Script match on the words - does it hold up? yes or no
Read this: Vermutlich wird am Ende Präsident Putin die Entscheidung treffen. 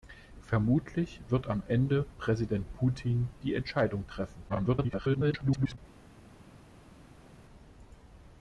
no